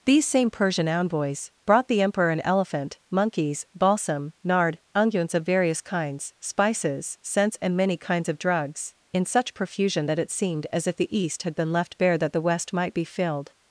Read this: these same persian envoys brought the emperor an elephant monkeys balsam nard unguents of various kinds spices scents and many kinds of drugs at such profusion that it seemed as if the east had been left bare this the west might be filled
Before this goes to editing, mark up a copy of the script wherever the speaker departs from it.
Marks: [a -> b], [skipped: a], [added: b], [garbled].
these same persian envoys brought the emperor an elephant monkeys balsam nard unguents of various kinds spices scents and many kinds of drugs [at -> in] such profusion that it seemed as if the east had been left bare [this -> that] the west might be filled